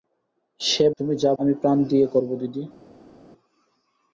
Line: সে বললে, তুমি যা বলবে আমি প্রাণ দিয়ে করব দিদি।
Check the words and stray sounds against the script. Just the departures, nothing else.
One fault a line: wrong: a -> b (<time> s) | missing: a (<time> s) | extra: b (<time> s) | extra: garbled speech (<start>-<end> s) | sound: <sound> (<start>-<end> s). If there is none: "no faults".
missing: বললে (0.8 s)
missing: বলবে (1.3 s)